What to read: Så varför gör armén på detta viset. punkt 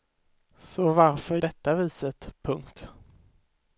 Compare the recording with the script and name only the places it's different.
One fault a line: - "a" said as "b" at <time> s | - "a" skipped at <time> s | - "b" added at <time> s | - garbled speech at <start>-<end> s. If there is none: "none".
- "gör armén på" skipped at 1.4 s